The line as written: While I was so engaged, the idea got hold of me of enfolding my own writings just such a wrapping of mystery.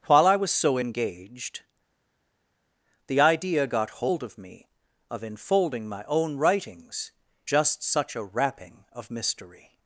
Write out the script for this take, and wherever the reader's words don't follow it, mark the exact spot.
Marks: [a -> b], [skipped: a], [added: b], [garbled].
While I was so engaged, the idea got hold of me of enfolding my own writings just such a wrapping of mystery.